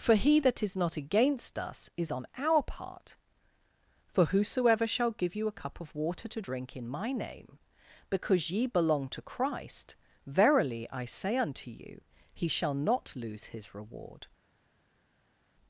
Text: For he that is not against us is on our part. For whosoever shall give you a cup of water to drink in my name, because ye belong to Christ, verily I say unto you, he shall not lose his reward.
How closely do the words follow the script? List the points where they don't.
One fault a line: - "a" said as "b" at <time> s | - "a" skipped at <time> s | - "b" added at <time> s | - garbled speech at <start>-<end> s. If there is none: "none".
none